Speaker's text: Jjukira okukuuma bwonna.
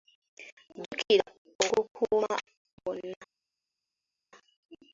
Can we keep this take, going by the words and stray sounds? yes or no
yes